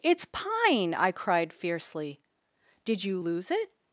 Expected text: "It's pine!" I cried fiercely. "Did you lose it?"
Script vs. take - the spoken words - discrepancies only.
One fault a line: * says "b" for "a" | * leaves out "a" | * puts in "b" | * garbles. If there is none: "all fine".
all fine